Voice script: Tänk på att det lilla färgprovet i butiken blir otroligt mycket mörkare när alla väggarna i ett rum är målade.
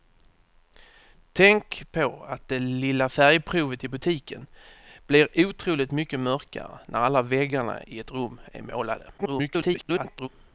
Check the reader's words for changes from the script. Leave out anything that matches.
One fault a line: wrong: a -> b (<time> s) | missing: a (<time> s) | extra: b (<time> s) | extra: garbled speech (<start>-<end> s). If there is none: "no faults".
extra: garbled speech (9.2-10.3 s)